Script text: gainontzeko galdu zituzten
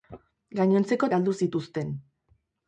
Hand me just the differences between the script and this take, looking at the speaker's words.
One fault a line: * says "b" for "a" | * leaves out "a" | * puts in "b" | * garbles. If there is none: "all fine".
all fine